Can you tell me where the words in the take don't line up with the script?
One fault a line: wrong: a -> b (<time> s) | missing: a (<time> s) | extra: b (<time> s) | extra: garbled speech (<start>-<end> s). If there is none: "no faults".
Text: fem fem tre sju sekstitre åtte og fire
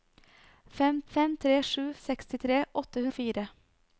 no faults